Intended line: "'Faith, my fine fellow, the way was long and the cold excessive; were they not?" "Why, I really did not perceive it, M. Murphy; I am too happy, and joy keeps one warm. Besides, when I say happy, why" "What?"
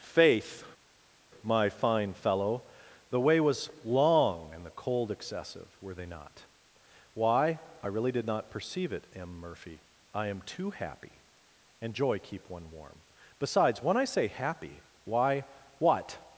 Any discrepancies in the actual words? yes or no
yes